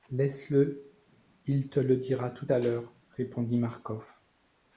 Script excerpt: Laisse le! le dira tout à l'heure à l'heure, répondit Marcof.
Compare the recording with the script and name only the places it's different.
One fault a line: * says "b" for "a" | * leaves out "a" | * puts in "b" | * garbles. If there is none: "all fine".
* puts in "il te"
* leaves out "à l'heure"